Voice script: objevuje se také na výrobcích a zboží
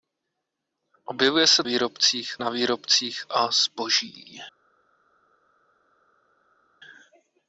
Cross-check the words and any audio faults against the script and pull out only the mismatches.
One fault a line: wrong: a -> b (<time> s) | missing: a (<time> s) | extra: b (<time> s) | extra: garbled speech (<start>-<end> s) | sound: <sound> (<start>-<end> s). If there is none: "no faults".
wrong: také -> výrobcích (1.6 s)